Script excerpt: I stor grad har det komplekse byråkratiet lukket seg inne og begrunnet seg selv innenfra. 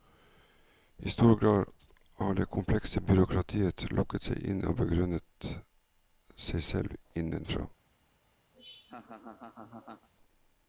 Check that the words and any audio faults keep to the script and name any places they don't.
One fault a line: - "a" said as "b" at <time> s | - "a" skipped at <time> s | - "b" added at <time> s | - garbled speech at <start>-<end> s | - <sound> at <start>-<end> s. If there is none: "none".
- laugh at 8.5-10.1 s